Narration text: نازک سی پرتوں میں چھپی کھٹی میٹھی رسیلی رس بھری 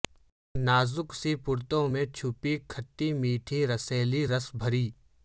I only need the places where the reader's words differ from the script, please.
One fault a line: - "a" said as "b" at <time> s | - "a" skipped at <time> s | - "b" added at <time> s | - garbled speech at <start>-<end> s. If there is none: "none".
none